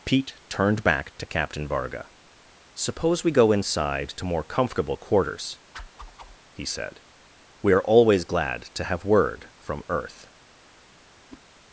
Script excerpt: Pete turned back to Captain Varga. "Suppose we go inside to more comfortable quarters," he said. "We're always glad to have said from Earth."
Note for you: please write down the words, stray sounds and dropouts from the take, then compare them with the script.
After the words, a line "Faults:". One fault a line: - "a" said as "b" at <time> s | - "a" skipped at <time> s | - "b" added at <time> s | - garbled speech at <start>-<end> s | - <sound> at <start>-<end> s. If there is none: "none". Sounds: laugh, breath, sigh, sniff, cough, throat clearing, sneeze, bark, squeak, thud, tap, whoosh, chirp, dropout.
Pete turned back to Captain Varga. "Suppose we go inside to more comfortable quarters," he said. "We're always glad to have word from Earth."
Faults:
- whoosh at 5.7-6.4 s
- "said" said as "word" at 9.0 s
- whoosh at 11.3-11.4 s